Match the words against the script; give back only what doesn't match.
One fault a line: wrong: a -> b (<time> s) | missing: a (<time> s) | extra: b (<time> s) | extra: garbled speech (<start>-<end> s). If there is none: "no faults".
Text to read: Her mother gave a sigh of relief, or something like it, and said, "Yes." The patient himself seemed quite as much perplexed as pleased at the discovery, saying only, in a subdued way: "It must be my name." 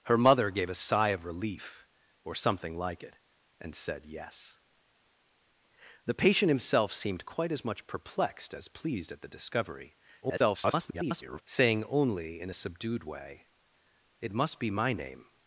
extra: garbled speech (10.2-11.4 s)